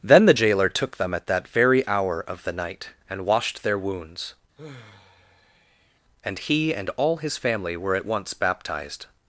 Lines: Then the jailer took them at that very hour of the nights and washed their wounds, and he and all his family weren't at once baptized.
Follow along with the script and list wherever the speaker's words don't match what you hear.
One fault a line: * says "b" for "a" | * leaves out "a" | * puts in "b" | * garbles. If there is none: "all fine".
* says "night" for "nights"
* says "were" for "weren't"